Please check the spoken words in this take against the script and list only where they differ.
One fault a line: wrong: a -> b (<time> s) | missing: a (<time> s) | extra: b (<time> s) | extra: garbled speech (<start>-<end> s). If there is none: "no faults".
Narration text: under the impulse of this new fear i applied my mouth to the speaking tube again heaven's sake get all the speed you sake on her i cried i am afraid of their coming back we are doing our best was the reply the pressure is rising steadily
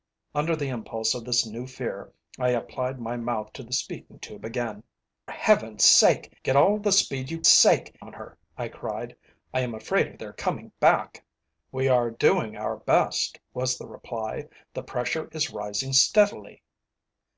no faults